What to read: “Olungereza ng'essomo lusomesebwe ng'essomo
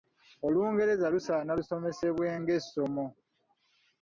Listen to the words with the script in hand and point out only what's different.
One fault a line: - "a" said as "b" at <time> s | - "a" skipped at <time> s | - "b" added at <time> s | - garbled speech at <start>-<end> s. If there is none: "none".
- "ng'essomo" said as "lusaana" at 1.1 s